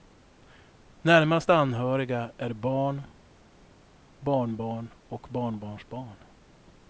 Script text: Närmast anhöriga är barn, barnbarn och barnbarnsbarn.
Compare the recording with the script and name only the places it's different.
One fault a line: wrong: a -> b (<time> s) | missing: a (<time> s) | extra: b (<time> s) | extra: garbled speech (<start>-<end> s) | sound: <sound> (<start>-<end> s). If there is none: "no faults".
no faults